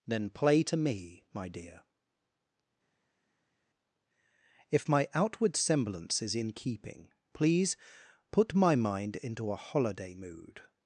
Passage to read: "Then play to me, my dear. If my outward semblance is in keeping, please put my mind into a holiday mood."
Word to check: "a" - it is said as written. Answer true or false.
true